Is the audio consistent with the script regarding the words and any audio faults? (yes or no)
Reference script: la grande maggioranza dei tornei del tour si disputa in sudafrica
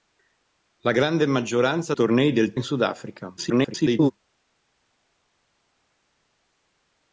no